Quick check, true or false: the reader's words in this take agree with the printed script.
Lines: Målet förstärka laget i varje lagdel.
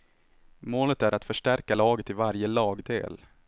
false